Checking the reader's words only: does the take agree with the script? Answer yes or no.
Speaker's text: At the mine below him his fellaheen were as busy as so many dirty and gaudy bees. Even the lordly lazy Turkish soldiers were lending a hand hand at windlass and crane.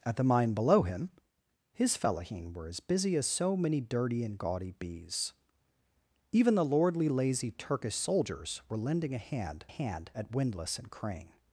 yes